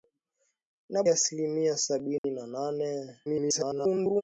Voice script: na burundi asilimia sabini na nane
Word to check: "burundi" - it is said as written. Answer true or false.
false